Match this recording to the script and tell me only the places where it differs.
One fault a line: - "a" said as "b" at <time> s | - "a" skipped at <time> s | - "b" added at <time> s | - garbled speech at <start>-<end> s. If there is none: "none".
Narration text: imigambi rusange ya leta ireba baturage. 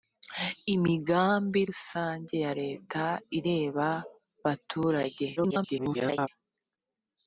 - garbled speech at 5.4-6.3 s